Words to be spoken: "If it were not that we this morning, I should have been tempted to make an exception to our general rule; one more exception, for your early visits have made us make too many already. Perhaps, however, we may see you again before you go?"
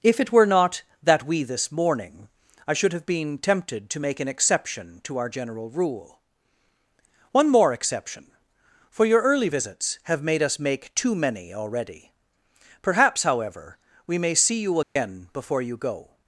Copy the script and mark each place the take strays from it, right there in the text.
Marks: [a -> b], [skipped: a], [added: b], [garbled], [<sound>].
"If it were not that we this morning, I should have been tempted to make an exception to our general rule; one more exception, for your early visits have made us make too many already. Perhaps, however, we may see you again [dropout] before you go?"